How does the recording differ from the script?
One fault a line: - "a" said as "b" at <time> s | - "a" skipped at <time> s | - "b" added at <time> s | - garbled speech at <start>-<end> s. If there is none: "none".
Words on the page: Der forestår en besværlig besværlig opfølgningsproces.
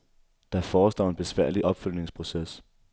- "besværlig" skipped at 1.7 s